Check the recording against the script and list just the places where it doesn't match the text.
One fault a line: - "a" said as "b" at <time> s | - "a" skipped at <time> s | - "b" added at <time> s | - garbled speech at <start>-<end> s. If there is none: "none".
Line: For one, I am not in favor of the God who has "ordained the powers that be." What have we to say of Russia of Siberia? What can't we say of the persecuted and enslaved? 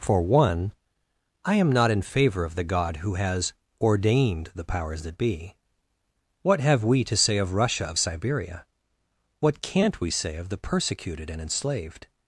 none